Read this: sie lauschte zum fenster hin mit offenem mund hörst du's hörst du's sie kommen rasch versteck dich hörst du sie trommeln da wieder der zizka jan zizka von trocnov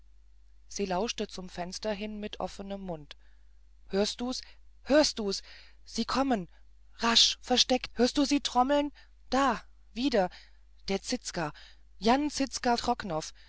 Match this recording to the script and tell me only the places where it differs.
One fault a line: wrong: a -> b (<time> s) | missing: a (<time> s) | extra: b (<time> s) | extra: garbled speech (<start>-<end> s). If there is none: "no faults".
missing: dich (7.9 s)
missing: von (12.7 s)